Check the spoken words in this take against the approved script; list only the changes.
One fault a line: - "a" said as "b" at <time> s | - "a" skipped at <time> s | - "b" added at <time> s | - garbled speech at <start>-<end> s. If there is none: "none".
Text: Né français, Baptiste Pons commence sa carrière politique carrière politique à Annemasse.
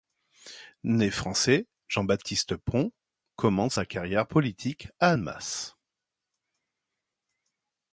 - "Jean" added at 1.9 s
- "carrière politique" skipped at 4.9 s